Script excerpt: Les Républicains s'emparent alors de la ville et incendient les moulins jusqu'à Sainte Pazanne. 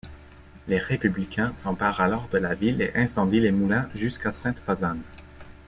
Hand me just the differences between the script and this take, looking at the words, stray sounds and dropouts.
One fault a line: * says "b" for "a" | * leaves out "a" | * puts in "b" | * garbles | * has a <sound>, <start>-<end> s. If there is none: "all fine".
all fine